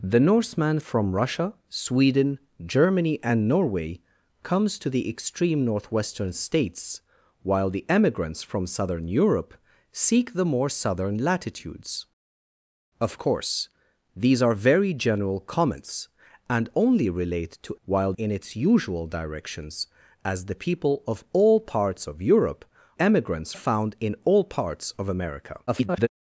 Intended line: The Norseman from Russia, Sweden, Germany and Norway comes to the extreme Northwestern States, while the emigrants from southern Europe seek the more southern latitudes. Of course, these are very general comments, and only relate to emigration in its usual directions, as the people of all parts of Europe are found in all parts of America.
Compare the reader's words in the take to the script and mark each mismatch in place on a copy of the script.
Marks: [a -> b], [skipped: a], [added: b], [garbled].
The Norseman from Russia, Sweden, Germany and Norway comes to the extreme Northwestern States, while the emigrants from southern Europe seek the more southern latitudes. Of course, these are very general comments, and only relate to [emigration -> while] in its usual directions, as the people of all parts of Europe [are -> emigrants] found in all parts of America. [garbled]